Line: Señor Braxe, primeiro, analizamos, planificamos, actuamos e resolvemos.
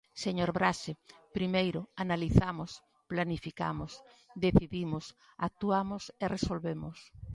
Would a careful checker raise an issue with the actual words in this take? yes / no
yes